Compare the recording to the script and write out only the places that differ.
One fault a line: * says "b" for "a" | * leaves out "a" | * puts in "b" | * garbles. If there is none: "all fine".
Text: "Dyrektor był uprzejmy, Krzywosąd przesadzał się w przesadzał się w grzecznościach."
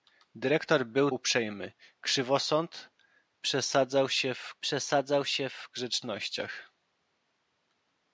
all fine